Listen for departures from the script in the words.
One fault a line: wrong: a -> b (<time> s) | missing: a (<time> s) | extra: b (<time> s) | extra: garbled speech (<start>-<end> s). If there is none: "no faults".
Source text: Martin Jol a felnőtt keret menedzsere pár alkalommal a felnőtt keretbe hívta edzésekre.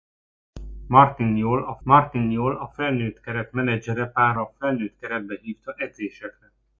extra: martin Jol a (1.8 s)
missing: alkalommal (4.4 s)